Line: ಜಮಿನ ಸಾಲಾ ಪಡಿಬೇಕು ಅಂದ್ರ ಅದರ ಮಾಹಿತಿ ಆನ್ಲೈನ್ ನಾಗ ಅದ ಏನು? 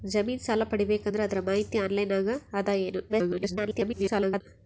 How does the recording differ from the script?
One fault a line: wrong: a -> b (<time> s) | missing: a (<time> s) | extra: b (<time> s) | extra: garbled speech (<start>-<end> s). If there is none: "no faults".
extra: garbled speech (3.1-4.4 s)